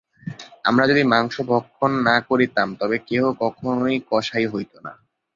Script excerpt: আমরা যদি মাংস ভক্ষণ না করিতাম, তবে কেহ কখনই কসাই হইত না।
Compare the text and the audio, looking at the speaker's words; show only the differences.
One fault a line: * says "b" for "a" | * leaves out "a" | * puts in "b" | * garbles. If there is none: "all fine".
all fine